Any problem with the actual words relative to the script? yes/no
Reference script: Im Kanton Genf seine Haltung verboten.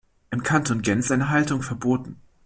no